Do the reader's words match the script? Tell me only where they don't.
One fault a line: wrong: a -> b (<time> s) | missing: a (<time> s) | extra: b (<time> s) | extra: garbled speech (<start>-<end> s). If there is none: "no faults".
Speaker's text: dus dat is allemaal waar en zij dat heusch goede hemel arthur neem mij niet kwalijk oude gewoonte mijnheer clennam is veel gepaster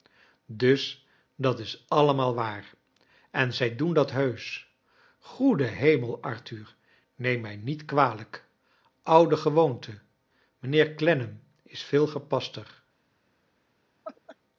extra: doen (3.8 s)